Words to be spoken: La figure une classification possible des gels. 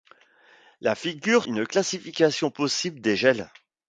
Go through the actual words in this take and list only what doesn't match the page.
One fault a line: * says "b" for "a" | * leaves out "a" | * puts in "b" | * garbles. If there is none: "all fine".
all fine